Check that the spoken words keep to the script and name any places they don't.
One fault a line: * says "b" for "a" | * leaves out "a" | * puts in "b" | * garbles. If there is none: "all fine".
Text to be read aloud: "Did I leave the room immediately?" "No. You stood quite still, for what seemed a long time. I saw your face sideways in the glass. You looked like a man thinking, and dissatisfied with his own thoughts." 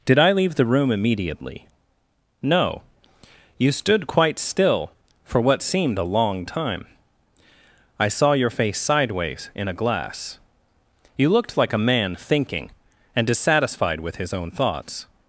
* says "a" for "the"